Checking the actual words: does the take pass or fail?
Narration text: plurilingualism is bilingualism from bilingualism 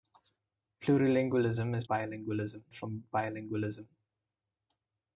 pass